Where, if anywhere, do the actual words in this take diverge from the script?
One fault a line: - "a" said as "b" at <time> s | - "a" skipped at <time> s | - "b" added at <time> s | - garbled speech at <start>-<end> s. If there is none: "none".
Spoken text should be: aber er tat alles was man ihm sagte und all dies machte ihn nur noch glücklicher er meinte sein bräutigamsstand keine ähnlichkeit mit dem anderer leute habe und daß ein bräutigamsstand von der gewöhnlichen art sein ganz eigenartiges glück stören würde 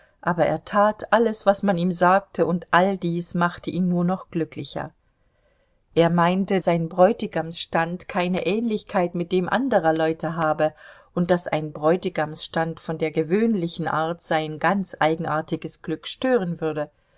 none